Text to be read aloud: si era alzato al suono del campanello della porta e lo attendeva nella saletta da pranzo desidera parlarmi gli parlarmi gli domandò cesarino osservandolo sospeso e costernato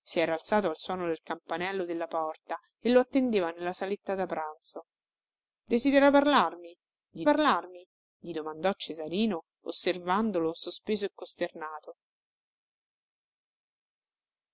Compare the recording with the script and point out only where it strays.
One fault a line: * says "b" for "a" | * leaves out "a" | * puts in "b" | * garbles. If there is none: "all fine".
all fine